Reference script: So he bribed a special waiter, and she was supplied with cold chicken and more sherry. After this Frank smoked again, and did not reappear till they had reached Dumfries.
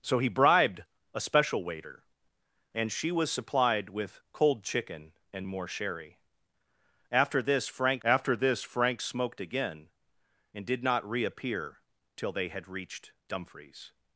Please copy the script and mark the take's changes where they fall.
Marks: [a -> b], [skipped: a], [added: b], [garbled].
So he bribed a special waiter, and she was supplied with cold chicken and more sherry. After this Frank [added: after this Frank] smoked again, and did not reappear till they had reached Dumfries.